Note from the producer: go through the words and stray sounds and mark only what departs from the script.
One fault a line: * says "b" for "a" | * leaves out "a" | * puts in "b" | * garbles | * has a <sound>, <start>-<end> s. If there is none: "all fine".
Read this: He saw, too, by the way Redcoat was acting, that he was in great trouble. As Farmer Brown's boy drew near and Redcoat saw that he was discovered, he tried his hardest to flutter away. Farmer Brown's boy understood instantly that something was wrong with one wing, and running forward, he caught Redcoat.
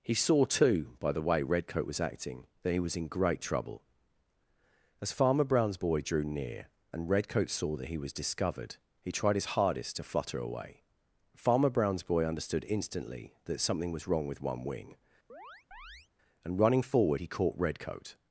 * has a chirp, 15.3-16.1 s